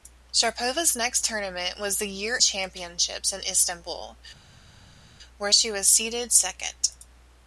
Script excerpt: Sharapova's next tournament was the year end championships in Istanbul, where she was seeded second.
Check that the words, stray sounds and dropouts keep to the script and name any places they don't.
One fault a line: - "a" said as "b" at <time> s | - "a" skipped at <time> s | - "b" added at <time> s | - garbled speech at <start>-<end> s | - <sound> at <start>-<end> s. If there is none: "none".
- "end" skipped at 2.4 s